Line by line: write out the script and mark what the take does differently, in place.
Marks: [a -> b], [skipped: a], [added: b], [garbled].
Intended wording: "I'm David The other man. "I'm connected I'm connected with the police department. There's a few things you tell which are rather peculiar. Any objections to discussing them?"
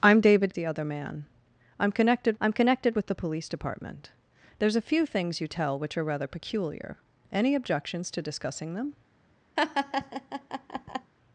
"I'm David The other man. "I'm connected I'm connected with the police department. There's a few things you tell which are rather peculiar. Any objections to discussing them?"